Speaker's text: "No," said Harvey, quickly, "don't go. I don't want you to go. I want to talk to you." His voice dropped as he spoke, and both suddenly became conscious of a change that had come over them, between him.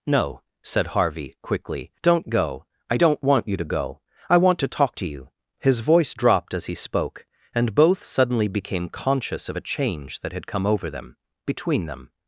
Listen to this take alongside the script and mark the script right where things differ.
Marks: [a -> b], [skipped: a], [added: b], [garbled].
"No," said Harvey, quickly, "don't go. I don't want you to go. I want to talk to you." His voice dropped as he spoke, and both suddenly became conscious of a change that had come over them, between [him. -> them]